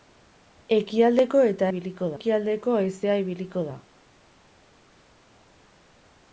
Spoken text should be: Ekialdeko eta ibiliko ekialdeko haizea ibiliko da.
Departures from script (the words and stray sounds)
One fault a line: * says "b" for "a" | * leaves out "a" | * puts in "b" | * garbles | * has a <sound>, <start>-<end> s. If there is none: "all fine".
all fine